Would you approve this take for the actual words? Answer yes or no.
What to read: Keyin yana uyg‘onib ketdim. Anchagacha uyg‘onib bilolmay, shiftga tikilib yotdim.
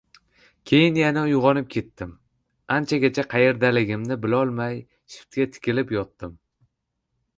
no